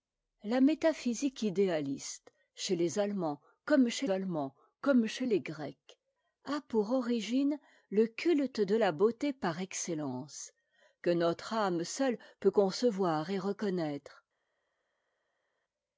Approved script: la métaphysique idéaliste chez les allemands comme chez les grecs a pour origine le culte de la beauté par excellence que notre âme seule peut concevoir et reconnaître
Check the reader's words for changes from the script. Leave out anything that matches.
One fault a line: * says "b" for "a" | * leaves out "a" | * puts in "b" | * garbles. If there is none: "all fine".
* puts in "allemands comme chez"